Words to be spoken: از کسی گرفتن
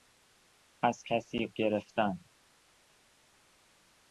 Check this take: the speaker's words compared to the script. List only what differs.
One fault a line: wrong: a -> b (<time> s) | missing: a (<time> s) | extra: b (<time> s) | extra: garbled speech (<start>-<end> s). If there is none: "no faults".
no faults